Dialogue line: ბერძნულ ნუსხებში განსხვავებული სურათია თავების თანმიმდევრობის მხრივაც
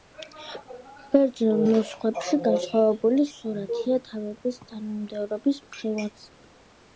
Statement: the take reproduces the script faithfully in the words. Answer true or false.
true